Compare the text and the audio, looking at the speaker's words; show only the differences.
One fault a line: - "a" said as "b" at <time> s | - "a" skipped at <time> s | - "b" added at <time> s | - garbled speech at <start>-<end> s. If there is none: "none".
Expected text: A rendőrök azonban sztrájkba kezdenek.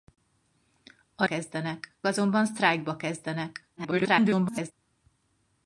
- "rendőrök" said as "kezdenek" at 1.2 s
- garbled speech at 3.8-4.7 s